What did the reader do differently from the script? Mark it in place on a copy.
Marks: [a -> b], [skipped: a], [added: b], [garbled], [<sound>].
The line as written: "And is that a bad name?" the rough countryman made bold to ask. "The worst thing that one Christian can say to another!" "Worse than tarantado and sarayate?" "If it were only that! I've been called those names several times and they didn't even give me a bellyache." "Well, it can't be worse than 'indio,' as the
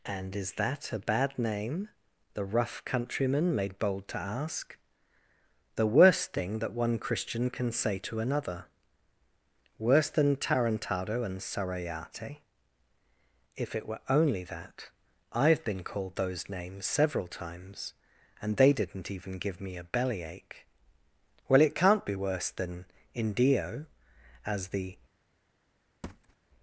"And is that a bad name?" the rough countryman made bold to ask. "The worst thing that one Christian can say to another!" "Worse than tarantado and sarayate?" "If it were only that! I've been called those names several times and they didn't even give me a bellyache." "Well, it can't be worse than 'indio,' as the [thud]